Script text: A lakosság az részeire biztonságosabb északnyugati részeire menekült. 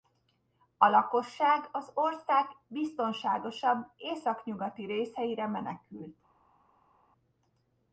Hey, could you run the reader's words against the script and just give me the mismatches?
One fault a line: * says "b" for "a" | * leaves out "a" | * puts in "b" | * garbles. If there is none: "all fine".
* says "ország" for "részeire"